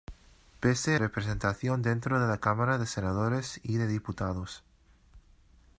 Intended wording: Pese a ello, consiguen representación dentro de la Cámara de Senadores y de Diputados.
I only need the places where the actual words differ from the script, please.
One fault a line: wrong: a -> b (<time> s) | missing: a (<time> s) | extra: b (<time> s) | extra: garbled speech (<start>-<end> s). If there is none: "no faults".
missing: a ello consiguen (0.9 s)